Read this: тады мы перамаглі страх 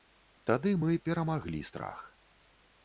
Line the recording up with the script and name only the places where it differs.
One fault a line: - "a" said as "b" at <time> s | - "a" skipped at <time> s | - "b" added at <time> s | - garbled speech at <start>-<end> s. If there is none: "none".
none